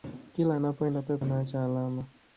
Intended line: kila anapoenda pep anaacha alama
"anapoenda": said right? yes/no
yes